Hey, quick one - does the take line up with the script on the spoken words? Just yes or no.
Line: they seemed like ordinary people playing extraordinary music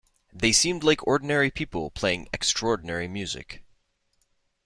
yes